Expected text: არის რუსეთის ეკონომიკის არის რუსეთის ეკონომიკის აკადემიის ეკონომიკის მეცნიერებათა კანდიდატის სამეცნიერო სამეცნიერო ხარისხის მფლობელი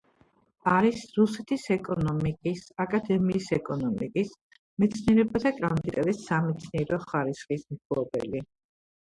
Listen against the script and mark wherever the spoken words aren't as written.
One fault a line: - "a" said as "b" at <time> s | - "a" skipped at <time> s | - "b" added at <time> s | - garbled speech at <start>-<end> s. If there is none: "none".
- "არის რუსეთის ეკონომიკის" skipped at 2.6 s
- "სამეცნიერო" skipped at 7.0 s